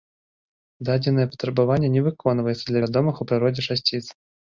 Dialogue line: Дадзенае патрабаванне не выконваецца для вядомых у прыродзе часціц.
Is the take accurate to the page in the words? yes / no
yes